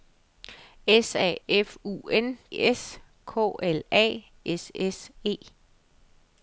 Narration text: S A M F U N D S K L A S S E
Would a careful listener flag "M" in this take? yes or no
yes